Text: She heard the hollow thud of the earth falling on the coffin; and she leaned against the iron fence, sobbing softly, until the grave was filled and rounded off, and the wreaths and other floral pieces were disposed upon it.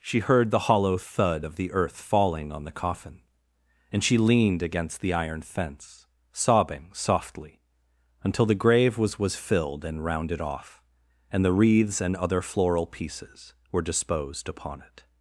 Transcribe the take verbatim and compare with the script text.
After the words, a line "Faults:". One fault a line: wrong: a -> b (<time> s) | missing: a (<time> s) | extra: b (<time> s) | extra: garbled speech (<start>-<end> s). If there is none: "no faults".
She heard the hollow thud of the earth falling on the coffin; and she leaned against the iron fence, sobbing softly, until the grave was was filled and rounded off, and the wreaths and other floral pieces were disposed upon it.
Faults:
extra: was (9.2 s)